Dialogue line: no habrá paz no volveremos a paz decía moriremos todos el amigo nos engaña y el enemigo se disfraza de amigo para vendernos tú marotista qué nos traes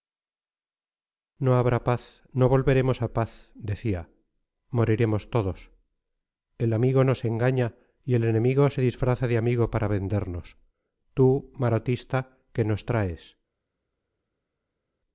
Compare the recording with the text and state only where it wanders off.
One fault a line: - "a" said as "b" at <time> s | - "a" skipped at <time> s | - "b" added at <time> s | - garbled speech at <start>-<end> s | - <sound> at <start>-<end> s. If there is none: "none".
none